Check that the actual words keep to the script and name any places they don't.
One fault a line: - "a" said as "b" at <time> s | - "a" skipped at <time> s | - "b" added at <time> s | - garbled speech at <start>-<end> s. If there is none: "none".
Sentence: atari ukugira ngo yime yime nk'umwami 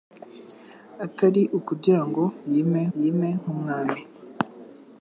none